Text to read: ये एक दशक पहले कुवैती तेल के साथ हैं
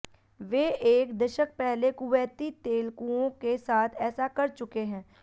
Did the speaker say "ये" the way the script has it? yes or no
no